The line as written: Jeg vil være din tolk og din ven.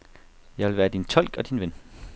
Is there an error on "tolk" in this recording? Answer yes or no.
no